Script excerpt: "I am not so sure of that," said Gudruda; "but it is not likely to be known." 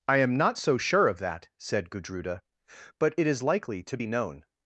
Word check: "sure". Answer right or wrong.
right